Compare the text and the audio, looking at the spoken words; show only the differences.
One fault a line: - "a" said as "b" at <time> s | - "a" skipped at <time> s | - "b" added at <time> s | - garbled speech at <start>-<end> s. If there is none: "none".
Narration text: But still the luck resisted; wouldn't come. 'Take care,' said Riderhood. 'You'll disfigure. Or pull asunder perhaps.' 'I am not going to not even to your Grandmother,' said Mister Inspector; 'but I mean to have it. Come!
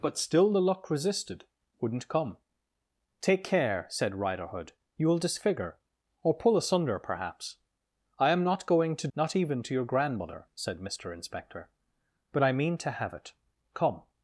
none